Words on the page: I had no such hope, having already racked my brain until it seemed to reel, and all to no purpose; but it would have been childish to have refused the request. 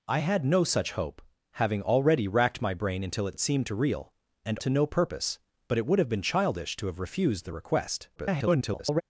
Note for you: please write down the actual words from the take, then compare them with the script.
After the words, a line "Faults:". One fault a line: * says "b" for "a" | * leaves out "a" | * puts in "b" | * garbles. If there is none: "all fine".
I had no such hope, having already racked my brain until it it seemed to reel, and to no purpose; but it would have been childish to have refused the request. [garbled]
Faults:
* puts in "it"
* leaves out "all"
* garbles